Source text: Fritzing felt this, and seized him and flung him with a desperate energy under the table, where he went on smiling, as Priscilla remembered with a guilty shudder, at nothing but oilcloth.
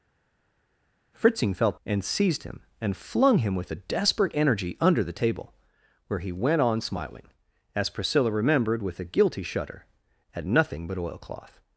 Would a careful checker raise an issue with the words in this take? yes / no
yes